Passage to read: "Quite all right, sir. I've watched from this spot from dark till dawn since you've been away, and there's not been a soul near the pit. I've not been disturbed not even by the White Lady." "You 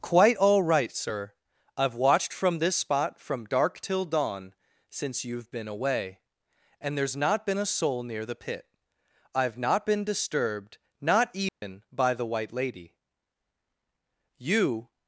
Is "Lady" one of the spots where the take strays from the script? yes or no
no